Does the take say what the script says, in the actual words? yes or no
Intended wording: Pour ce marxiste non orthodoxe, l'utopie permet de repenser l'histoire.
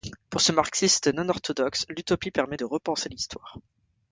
yes